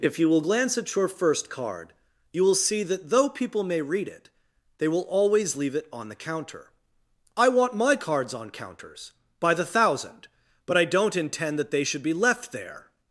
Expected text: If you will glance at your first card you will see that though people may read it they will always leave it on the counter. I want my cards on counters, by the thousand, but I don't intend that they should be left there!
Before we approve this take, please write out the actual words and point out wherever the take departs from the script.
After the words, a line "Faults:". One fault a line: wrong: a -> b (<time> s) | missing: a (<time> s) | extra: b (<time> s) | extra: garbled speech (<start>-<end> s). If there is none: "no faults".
If you will glance at your first card you will see that though people may read it they will always leave it on the counter. I want my cards on counters, by the thousand, but I don't intend that they should be left there!
Faults:
no faults